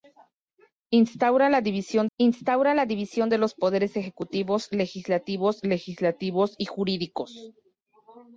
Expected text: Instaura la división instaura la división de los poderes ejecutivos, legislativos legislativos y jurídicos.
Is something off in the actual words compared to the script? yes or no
no